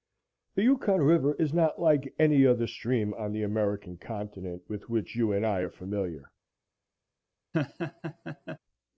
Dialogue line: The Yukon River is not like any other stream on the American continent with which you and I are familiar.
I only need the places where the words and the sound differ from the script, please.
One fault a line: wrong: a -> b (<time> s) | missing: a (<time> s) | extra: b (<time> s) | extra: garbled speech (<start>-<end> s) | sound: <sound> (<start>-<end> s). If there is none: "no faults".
sound: laugh (7.5-8.6 s)